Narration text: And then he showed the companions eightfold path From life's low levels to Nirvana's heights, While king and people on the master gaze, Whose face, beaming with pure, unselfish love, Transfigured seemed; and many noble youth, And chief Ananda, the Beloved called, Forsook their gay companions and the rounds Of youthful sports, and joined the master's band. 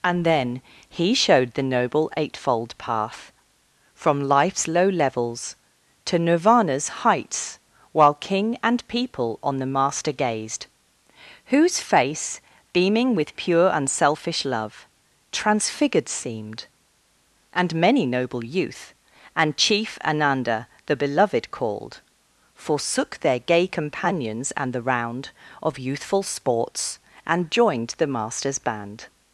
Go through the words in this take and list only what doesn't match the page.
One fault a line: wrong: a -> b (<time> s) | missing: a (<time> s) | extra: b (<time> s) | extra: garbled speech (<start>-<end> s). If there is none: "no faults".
wrong: companions -> noble (1.6 s)
wrong: gaze -> gazed (10.1 s)
wrong: rounds -> round (24.8 s)